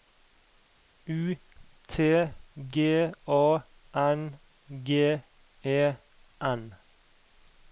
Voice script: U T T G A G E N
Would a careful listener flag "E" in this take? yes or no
no